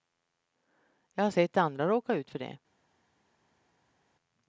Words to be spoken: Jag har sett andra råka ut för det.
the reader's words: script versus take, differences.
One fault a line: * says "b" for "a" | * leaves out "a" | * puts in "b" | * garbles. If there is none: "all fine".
all fine